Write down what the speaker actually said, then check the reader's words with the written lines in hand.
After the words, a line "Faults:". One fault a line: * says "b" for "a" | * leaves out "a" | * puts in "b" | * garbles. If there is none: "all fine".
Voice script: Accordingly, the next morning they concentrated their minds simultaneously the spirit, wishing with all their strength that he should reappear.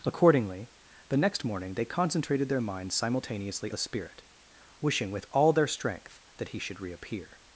Accordingly, the next morning they concentrated their minds simultaneously the spirit, wishing with all their strength that he should reappear.
Faults:
all fine